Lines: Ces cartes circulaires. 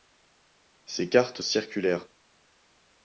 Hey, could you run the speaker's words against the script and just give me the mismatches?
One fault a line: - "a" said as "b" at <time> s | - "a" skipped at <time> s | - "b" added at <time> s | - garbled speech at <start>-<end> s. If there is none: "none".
none